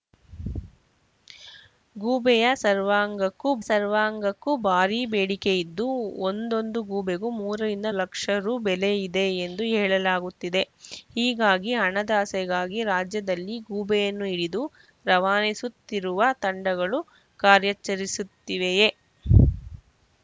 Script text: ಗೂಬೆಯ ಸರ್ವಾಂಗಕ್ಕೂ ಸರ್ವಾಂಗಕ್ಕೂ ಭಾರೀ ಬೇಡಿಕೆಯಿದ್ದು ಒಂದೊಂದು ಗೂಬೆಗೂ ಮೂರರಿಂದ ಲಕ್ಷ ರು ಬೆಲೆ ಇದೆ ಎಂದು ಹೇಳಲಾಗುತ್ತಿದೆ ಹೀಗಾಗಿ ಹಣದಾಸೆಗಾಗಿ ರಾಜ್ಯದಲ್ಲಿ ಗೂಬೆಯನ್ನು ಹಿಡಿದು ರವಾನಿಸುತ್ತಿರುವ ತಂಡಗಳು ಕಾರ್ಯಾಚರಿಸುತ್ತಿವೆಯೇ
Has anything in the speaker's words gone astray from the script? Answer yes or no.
no